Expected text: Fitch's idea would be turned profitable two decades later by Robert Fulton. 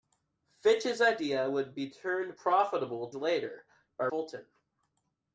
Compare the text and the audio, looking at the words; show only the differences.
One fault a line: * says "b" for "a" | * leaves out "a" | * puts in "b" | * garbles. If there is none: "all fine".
* leaves out "two decades"
* leaves out "Robert"